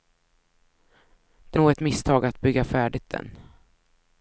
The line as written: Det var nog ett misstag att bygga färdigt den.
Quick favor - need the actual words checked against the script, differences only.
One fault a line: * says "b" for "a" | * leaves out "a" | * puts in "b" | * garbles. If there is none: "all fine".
* leaves out "var"